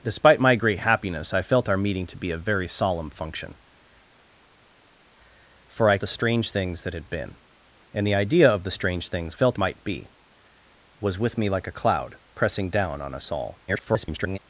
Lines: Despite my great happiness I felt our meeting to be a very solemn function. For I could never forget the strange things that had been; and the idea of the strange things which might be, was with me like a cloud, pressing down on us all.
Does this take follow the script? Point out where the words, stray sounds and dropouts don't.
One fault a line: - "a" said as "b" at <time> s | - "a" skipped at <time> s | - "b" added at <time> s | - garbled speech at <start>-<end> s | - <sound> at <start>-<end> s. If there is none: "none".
- "could never forget" skipped at 6.0 s
- "which" said as "felt" at 9.3 s
- garbled speech at 13.7-14.4 s